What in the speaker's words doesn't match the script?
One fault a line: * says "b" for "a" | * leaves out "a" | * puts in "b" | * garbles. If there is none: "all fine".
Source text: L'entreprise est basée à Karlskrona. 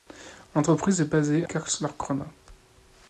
* leaves out "à"